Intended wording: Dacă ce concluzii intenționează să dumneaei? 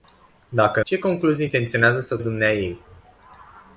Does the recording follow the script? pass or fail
pass